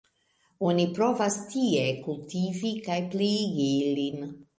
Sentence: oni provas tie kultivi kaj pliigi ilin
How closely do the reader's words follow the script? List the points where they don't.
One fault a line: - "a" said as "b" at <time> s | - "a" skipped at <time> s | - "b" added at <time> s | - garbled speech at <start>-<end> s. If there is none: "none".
none